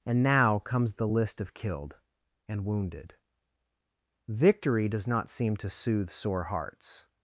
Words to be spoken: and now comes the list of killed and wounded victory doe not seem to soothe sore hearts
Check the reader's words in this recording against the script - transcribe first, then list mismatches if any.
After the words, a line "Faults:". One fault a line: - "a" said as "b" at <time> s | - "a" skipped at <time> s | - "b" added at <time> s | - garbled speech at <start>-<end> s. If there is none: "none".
and now comes the list of killed and wounded victory does not seem to soothe sore hearts
Faults:
- "doe" said as "does" at 4.9 s